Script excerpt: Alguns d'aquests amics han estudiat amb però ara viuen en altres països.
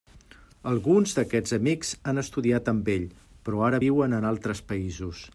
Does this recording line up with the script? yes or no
no